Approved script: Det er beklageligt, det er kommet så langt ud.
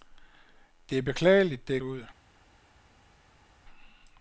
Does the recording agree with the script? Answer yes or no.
no